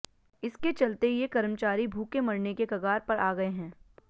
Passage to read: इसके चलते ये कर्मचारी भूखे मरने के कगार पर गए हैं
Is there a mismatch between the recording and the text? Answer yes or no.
yes